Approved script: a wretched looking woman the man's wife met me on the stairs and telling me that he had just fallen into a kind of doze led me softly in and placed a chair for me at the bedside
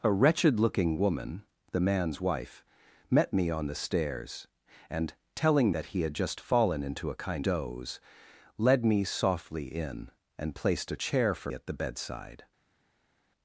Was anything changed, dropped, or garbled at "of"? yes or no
yes